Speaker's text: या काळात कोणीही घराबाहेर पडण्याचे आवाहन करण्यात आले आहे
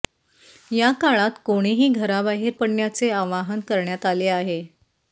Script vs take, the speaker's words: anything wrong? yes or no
no